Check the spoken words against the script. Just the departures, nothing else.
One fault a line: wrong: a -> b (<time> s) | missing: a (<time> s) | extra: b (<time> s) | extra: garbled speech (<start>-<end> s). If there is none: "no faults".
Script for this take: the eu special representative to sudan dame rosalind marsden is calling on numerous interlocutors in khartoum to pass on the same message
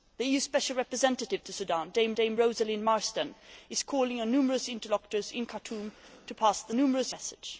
extra: dame (2.1 s)
wrong: same -> numerous (6.8 s)